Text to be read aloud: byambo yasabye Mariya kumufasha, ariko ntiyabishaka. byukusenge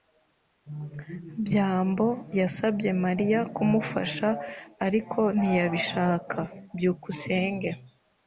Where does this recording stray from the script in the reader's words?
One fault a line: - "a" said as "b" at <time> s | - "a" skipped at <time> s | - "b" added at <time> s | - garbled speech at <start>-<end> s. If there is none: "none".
none